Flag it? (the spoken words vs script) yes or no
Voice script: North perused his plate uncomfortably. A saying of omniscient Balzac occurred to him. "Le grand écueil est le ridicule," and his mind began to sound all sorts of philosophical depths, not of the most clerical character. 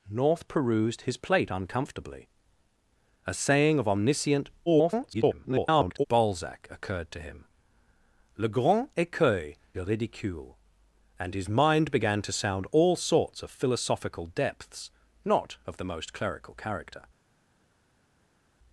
yes